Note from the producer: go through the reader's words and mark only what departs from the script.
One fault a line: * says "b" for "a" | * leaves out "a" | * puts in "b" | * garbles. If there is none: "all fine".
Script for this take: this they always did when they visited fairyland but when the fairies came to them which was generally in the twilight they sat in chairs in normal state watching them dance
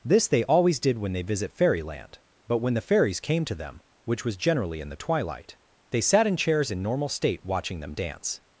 * says "visit" for "visited"